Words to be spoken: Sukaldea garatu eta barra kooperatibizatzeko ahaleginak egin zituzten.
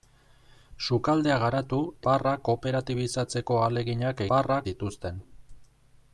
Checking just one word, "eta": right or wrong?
wrong